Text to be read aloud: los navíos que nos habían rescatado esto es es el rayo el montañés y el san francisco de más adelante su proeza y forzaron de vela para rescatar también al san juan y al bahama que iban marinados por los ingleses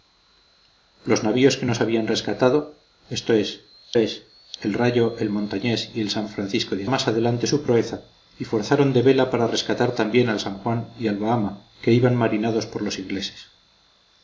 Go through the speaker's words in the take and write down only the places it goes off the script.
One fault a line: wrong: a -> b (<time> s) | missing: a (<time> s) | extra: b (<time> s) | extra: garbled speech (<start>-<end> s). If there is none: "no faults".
no faults